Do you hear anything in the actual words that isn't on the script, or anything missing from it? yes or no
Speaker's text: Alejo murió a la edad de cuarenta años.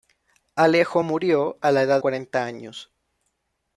yes